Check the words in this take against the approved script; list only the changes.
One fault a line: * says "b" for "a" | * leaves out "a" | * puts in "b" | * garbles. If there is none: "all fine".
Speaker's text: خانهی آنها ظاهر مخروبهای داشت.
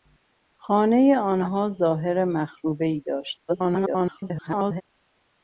* garbles